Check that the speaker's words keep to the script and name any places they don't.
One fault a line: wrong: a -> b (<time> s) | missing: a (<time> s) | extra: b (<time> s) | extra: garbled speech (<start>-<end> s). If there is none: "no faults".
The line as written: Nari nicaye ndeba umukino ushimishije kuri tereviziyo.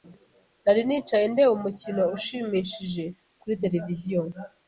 no faults